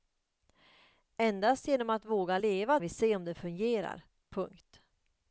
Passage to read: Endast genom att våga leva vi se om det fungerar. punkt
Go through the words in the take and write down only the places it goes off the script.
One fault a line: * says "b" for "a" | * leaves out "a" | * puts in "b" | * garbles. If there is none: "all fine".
all fine